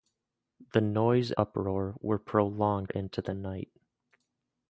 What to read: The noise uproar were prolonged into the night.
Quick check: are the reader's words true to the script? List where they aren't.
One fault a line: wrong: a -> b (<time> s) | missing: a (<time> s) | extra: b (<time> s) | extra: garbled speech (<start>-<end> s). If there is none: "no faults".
no faults